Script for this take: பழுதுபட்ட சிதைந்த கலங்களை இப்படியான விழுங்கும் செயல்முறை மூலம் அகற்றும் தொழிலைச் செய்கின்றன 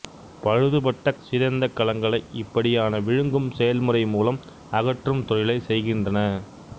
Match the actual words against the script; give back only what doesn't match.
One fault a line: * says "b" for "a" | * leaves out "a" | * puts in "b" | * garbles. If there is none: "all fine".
all fine